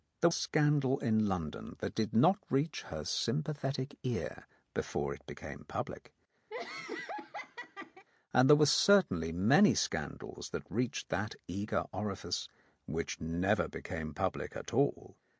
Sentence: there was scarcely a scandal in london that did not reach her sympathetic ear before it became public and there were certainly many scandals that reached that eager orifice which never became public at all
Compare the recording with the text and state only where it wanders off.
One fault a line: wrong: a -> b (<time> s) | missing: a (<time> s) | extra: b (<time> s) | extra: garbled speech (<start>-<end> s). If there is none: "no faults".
missing: was scarcely a (0.3 s)